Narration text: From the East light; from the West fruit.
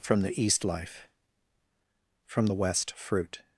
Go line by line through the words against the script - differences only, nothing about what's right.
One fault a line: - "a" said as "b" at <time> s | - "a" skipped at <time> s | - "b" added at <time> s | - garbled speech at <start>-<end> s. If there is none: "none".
- "light" said as "life" at 0.7 s